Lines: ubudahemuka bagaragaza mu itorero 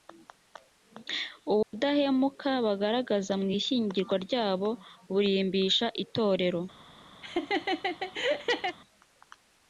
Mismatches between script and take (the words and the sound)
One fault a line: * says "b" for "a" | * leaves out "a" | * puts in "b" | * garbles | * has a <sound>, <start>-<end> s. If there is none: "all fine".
* has a dropout, 1.6-1.7 s
* puts in "ishyingiranwa ryabo burimbisha"
* has a laugh, 7.2-8.8 s